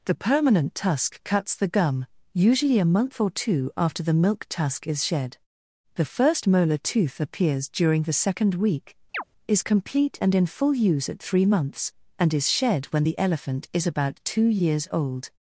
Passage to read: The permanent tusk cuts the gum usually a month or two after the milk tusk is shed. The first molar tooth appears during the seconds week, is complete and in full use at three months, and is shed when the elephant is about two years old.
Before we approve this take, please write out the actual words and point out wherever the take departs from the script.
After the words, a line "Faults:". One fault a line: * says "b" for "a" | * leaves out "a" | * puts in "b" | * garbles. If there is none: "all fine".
The permanent tusk cuts the gum usually a month or two after the milk tusk is shed. The first molar tooth appears during the second week, is complete and in full use at three months, and is shed when the elephant is about two years old.
Faults:
* says "second" for "seconds"